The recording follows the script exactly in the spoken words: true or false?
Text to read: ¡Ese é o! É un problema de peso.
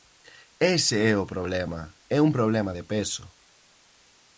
false